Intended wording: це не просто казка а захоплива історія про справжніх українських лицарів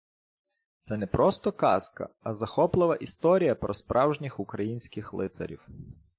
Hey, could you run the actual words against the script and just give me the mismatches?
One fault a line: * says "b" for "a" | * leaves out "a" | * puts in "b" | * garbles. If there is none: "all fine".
all fine